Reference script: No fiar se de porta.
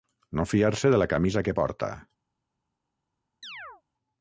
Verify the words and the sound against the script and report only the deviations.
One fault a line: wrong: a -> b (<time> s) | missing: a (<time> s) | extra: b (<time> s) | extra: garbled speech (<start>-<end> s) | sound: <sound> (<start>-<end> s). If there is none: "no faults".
extra: la camisa que (1.0 s)
sound: chirp (3.4-3.8 s)